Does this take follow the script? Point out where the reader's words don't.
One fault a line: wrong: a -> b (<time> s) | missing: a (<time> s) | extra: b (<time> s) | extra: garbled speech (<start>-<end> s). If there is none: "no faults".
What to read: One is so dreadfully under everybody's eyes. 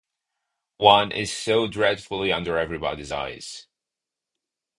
no faults